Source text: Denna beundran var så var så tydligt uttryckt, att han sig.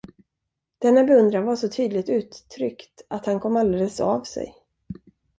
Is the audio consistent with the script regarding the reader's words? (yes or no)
no